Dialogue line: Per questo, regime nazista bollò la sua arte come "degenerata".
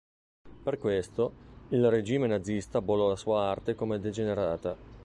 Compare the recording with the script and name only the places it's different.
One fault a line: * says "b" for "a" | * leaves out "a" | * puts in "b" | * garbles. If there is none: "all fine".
* puts in "il"